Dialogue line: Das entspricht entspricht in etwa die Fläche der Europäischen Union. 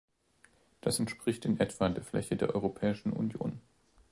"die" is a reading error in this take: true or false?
true